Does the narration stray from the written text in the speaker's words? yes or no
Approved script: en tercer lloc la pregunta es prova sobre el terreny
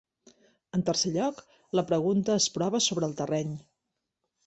no